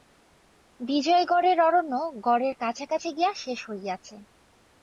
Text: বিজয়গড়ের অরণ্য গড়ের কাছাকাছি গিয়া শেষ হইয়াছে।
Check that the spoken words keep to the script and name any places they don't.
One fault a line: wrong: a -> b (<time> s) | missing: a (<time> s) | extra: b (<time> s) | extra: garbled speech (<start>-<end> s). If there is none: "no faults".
no faults